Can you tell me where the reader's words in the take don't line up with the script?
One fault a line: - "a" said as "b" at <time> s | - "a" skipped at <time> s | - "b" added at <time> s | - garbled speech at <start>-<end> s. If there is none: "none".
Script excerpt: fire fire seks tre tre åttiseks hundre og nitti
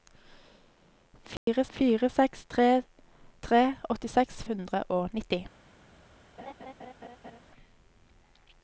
none